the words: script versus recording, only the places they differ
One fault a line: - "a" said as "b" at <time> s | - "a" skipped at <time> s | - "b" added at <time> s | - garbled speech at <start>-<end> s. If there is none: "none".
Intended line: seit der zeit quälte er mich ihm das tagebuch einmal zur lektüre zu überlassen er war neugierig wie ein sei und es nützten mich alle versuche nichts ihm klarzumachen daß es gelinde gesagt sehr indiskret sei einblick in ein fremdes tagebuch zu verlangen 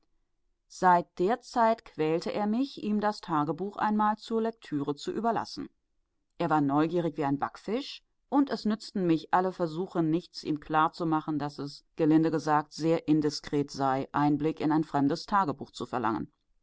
- "sei" said as "backfisch" at 7.4 s